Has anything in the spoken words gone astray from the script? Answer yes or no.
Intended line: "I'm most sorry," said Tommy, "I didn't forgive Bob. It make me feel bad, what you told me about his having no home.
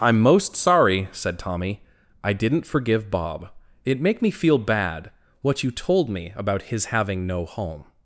no